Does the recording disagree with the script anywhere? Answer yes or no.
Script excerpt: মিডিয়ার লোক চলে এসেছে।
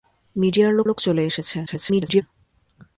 yes